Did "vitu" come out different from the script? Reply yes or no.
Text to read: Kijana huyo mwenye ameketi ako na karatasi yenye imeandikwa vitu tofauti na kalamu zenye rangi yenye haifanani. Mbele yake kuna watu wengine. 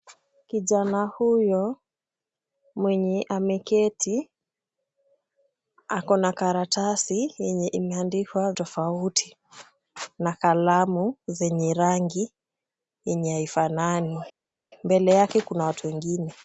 yes